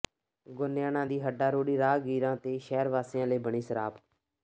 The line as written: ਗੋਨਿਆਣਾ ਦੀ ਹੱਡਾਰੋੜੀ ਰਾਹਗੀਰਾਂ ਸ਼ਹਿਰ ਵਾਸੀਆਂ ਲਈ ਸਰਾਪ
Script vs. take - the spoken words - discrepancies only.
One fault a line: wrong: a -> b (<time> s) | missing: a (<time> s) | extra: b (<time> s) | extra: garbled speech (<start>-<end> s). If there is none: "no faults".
extra: ਤੇ (2.4 s)
extra: ਬਣੀ (3.4 s)